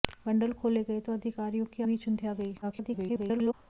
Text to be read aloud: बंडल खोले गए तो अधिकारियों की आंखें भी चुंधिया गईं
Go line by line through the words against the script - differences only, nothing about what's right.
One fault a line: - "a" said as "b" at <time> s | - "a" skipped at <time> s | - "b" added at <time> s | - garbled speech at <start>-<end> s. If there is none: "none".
- "आंखें" skipped at 1.8 s
- garbled speech at 2.6-3.5 s